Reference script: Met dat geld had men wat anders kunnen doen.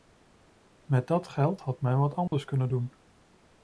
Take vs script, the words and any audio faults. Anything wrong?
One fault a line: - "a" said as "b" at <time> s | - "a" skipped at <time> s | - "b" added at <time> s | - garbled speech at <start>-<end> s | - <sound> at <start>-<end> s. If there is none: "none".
- dropout at 2.3-2.3 s